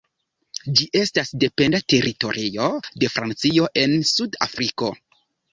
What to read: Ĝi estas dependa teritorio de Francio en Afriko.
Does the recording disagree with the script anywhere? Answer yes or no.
yes